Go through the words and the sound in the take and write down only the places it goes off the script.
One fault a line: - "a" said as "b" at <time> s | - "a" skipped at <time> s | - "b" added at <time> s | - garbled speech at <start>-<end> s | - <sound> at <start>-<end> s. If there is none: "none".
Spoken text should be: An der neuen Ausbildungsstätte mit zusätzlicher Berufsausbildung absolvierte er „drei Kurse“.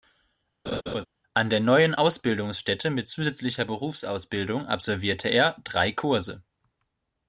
- laugh at 0.7-1.1 s